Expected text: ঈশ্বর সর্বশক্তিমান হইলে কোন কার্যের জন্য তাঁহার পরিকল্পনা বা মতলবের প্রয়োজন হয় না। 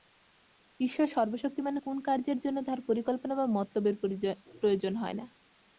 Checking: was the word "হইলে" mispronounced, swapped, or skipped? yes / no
yes